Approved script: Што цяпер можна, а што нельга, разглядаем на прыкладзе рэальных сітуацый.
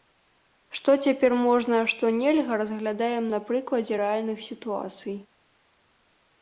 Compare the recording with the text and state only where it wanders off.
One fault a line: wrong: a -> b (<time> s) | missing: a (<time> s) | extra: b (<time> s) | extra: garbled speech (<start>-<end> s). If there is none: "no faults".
no faults